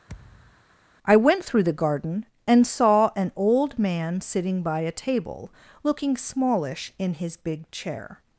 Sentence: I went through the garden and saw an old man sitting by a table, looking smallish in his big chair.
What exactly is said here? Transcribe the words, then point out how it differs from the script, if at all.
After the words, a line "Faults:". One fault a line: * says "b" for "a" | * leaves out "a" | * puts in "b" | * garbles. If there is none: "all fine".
I went through the garden and saw an old man sitting by a table, looking smallish in his big chair.
Faults:
all fine